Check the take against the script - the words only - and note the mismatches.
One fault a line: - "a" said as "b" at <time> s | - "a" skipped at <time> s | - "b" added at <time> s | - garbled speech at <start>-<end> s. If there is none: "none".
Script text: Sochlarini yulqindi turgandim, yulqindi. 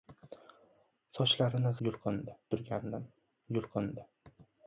none